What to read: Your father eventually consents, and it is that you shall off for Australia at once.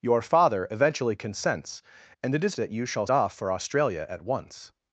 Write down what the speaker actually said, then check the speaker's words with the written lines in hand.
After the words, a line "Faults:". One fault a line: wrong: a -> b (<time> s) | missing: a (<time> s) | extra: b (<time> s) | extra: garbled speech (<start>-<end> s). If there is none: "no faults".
Your father eventually consents, and it is that you shall off for Australia at once.
Faults:
no faults